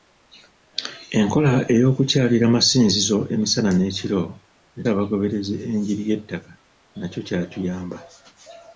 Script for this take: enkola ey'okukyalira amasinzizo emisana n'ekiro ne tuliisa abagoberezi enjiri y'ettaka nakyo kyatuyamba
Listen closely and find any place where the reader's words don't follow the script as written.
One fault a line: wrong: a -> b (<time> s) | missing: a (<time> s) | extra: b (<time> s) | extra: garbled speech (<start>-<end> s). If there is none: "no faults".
missing: tuliisa (4.8 s)